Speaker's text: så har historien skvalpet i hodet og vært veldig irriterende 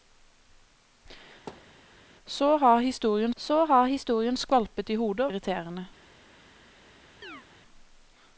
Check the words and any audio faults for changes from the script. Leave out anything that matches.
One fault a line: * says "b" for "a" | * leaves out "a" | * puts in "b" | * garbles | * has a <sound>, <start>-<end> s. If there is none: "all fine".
* has a thud, 1.5-1.8 s
* puts in "så har historien"
* leaves out "vært veldig"
* has a chirp, 7.2-7.4 s